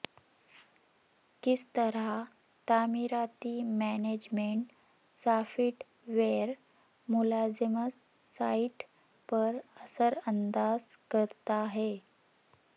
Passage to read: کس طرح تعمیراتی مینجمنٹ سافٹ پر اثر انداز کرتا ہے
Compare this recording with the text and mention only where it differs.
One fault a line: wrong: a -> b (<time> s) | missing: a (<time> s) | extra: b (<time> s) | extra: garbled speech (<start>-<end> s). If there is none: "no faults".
extra: ویئر ملازمت سائٹ (6.1 s)